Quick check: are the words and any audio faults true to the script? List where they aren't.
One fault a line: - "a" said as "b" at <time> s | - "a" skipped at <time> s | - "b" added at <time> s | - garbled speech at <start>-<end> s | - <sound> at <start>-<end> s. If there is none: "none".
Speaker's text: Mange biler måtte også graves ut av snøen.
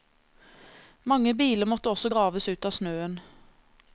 none